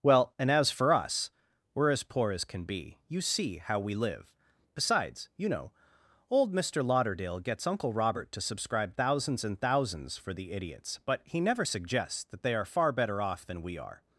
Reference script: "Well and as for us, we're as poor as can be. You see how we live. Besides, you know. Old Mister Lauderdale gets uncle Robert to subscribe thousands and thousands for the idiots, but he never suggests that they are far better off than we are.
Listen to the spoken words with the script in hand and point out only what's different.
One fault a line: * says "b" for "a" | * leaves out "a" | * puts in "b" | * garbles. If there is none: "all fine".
all fine